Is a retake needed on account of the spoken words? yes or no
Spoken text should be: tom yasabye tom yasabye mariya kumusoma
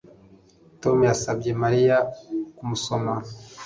yes